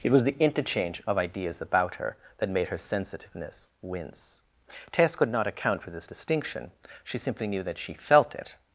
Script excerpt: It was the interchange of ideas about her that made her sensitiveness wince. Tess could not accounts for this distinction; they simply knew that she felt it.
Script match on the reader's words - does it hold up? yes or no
no